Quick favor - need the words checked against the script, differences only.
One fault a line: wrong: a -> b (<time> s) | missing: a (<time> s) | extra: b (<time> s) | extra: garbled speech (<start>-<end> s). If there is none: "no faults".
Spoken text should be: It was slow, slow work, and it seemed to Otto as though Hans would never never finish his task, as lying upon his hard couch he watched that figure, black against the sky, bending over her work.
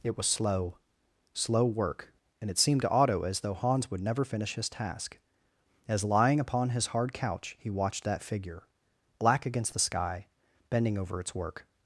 missing: never (4.2 s)
wrong: her -> its (11.2 s)